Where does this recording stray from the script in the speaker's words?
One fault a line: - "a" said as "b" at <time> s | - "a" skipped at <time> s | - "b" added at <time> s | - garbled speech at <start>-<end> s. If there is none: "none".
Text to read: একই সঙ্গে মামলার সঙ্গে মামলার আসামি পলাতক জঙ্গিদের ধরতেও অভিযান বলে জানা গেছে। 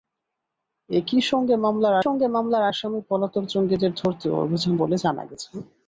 none